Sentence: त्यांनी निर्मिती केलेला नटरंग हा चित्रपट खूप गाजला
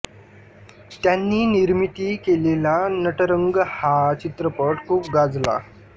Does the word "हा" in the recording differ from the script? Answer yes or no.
no